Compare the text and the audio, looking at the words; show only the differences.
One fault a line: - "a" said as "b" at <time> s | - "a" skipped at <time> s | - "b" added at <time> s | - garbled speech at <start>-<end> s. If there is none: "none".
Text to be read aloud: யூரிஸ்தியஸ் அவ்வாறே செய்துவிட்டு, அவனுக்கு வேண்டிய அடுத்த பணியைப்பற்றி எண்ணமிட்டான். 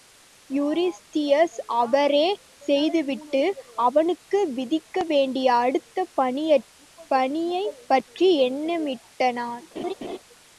- "விதிக்க" added at 4.5 s